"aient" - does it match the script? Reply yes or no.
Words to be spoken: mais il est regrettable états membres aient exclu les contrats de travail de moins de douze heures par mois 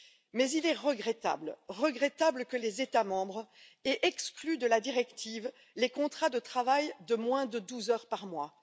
yes